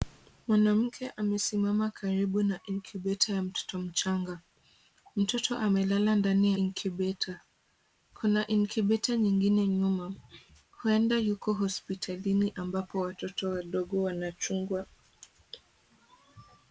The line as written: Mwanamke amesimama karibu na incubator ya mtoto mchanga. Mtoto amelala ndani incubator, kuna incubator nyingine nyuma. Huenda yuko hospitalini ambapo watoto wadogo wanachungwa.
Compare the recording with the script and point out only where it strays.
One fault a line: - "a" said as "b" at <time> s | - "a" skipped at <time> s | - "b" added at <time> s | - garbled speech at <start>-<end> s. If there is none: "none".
none